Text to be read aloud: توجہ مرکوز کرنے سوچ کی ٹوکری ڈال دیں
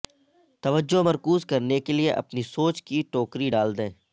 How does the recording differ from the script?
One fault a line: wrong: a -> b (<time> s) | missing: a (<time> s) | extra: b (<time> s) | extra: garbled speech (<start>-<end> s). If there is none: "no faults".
extra: کے لئے اپنی (1.8 s)